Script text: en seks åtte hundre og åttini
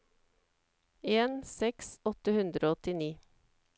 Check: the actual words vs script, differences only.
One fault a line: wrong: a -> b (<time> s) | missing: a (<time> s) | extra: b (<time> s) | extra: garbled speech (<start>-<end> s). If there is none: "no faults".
no faults